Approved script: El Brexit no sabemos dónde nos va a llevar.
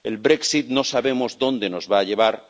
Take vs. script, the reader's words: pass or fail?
pass